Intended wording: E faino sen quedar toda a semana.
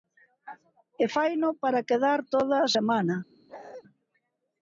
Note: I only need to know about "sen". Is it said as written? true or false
false